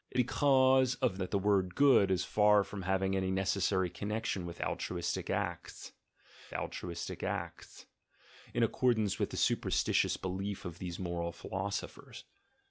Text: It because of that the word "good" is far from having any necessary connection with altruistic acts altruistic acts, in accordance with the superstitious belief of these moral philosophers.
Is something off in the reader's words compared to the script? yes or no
no